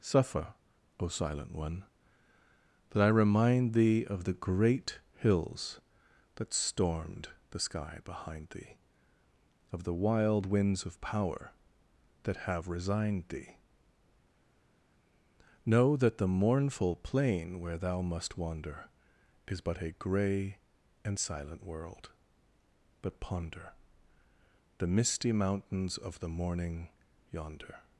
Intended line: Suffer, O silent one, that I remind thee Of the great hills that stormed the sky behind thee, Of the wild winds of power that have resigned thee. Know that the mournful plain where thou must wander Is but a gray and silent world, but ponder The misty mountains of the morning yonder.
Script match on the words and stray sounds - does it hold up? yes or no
yes